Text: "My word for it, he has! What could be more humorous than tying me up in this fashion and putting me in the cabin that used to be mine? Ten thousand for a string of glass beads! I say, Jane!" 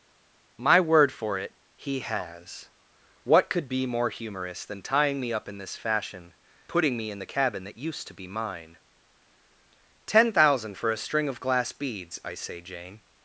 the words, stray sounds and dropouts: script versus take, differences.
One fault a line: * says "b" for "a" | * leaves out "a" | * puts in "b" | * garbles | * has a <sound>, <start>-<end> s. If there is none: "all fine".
* leaves out "and"